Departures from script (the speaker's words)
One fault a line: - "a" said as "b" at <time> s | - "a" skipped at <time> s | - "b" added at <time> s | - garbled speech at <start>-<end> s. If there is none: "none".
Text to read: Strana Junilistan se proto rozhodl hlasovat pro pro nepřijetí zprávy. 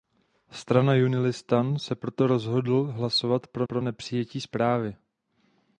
none